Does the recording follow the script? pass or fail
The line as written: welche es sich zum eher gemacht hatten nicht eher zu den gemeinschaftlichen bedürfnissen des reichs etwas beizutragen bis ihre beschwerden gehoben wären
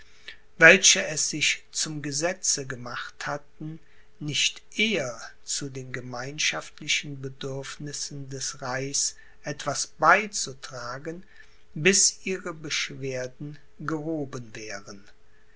fail